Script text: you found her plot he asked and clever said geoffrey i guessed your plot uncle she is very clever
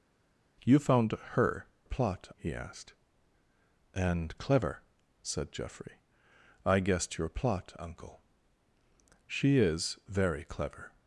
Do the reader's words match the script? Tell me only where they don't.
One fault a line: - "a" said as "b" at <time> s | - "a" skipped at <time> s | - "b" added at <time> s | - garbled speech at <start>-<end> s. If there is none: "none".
none